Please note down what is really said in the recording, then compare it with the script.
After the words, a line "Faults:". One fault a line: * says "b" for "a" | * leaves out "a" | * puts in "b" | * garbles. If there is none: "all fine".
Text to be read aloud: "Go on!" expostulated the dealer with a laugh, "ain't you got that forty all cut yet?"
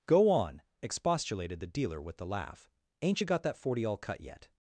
"Go on!" expostulated the dealer with the laugh, "ain't you got that forty all cut yet?"
Faults:
* says "the" for "a"